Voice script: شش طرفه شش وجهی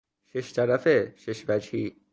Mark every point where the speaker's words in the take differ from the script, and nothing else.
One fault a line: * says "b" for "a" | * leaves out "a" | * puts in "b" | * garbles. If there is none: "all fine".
all fine